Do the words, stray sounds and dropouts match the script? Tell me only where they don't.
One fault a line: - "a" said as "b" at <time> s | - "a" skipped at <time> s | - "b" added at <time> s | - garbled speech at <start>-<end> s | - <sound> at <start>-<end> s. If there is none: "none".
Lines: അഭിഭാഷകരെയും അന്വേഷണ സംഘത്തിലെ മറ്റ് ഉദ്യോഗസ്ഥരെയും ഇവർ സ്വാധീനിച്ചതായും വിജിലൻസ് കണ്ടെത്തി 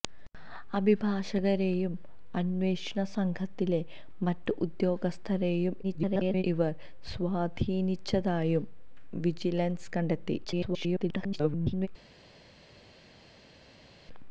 - garbled speech at 5.8-6.4 s
- garbled speech at 10.4-11.9 s